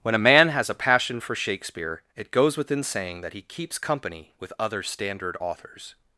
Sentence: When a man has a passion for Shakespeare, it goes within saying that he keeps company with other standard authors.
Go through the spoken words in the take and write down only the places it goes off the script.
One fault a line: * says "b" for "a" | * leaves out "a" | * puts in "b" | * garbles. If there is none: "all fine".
all fine